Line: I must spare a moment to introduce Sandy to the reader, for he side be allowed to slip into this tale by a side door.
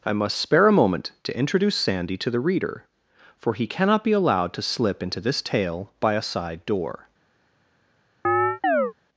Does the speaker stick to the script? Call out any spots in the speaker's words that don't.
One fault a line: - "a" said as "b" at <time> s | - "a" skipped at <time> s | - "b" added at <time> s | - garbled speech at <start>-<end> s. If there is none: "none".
- "side" said as "cannot" at 3.6 s